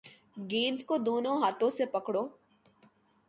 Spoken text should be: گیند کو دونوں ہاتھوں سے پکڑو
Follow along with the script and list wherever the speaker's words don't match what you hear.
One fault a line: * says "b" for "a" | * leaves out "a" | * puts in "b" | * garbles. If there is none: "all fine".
all fine